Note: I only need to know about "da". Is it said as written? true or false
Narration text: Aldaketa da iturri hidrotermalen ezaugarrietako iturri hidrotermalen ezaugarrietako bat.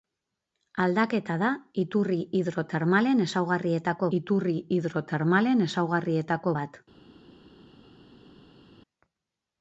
true